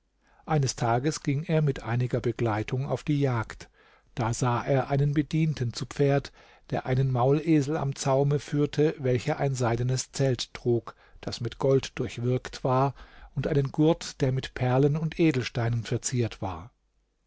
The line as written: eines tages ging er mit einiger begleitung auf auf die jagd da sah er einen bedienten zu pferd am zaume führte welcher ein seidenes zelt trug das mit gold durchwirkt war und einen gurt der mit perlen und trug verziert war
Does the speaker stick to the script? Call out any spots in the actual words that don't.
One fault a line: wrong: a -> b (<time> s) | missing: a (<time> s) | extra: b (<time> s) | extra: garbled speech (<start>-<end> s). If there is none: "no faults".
missing: auf (3.0 s)
extra: der einen maulesel (6.7 s)
wrong: trug -> edelsteinen (15.2 s)